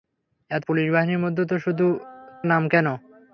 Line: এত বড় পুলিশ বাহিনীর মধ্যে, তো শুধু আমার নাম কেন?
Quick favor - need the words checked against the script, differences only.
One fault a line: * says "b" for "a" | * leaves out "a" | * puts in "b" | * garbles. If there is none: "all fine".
* leaves out "বড়"
* leaves out "আমার"